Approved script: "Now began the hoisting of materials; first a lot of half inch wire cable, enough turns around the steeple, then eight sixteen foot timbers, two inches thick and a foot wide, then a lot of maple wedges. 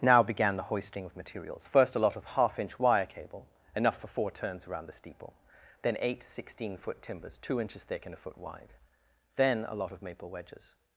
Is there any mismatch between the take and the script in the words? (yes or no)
yes